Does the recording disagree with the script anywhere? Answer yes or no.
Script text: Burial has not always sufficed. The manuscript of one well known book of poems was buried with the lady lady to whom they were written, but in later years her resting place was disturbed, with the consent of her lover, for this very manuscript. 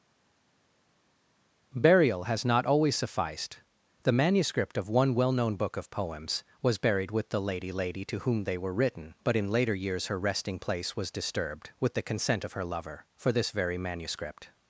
no